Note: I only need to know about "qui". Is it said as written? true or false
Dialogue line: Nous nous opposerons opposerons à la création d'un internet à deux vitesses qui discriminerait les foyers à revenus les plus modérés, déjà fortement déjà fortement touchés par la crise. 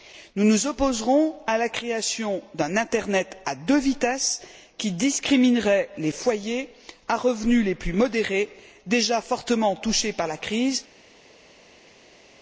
true